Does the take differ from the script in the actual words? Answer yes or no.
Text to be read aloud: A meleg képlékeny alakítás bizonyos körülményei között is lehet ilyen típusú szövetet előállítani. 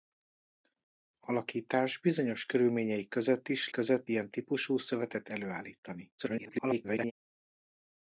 yes